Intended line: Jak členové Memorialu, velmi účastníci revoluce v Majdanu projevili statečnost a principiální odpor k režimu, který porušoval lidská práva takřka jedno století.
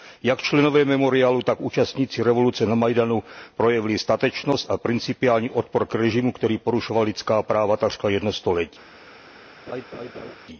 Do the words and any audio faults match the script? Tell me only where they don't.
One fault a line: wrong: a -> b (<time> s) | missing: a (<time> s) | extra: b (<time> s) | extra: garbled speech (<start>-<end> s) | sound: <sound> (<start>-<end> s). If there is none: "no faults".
wrong: velmi -> tak (1.4 s)
wrong: v -> na (2.6 s)
sound: laugh (9.7-10.4 s)